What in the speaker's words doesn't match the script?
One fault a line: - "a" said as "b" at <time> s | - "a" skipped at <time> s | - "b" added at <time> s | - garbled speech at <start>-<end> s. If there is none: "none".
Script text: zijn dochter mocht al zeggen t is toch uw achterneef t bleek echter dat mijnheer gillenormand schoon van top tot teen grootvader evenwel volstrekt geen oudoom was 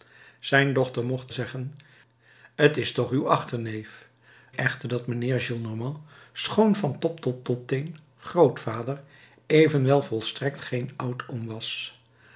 - "al" skipped at 1.3 s
- "t bleek" skipped at 4.1 s
- "tot" added at 7.4 s